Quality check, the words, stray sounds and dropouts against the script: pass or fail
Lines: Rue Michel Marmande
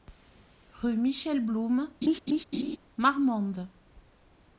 fail